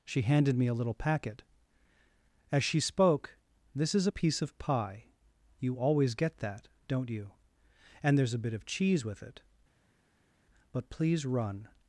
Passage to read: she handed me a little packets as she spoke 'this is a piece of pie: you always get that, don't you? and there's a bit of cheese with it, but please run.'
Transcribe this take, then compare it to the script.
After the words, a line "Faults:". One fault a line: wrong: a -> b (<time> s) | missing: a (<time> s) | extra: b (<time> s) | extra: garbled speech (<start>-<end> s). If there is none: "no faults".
she handed me a little packet as she spoke 'this is a piece of pie: you always get that, don't you? and there's a bit of cheese with it, but please run.'
Faults:
wrong: packets -> packet (0.9 s)